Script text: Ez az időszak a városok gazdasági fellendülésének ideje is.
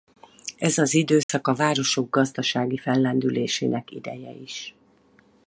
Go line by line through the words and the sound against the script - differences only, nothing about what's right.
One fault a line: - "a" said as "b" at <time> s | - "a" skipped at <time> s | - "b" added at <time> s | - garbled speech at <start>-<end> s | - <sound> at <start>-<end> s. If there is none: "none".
- dropout at 1.2-1.3 s